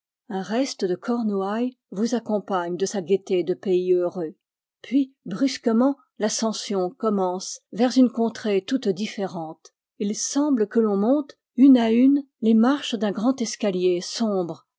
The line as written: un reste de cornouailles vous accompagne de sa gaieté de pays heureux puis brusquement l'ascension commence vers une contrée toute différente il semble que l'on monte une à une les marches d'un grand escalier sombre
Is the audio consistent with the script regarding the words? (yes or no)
yes